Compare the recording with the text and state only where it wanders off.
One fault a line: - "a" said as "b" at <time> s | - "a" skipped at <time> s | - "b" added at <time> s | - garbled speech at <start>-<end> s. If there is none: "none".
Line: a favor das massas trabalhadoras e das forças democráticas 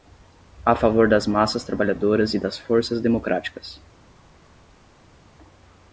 none